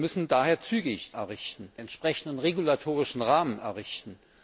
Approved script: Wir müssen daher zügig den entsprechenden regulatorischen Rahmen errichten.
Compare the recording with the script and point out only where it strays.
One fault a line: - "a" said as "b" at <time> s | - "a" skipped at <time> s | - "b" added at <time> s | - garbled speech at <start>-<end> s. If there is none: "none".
- "den" said as "errichten" at 1.1 s